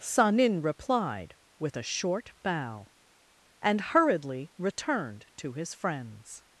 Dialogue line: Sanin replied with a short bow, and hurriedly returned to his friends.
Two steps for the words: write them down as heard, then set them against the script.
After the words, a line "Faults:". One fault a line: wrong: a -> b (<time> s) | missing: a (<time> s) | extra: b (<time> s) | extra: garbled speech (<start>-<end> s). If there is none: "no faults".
Sanin replied with a short bow, and hurriedly returned to his friends.
Faults:
no faults